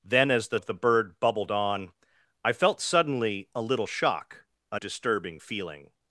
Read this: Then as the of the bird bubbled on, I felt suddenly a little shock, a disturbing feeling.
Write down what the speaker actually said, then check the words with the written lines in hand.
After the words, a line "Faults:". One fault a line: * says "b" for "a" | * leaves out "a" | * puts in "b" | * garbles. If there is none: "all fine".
Then as the of the bird bubbled on, I felt suddenly a little shock, a disturbing feeling.
Faults:
all fine